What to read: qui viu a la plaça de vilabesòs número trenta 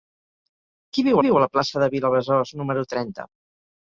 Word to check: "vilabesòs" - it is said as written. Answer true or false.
true